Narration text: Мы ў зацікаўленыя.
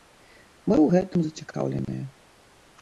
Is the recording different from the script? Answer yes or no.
yes